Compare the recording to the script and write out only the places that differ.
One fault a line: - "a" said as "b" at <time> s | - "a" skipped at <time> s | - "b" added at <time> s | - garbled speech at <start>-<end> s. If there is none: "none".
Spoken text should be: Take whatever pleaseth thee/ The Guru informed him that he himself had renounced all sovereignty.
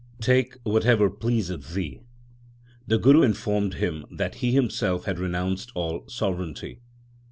none